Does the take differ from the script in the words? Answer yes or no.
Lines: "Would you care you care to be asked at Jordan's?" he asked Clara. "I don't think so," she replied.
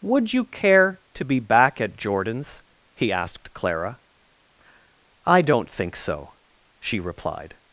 yes